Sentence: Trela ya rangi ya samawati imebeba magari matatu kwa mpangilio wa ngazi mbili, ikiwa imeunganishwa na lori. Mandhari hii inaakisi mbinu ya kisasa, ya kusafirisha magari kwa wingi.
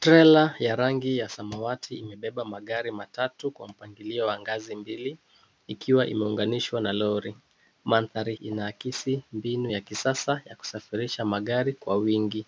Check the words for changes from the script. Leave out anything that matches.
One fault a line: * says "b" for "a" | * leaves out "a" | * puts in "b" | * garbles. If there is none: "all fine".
* leaves out "hii"